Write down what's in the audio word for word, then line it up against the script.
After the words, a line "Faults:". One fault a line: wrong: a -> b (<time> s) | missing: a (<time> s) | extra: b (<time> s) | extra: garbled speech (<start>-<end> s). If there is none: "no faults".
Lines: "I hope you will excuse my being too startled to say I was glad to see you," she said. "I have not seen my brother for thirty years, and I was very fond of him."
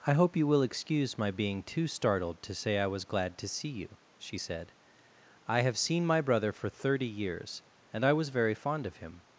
"I hope you will excuse my being too startled to say I was glad to see you," she said. "I have seen my brother for thirty years, and I was very fond of him."
Faults:
missing: not (5.8 s)